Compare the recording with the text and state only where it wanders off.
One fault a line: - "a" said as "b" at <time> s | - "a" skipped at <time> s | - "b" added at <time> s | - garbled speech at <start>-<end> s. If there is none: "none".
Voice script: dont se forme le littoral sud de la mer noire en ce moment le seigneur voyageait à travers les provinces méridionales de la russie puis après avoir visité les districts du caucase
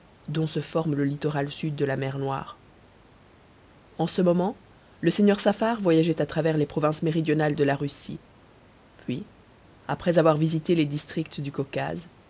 - "saffar" added at 5.4 s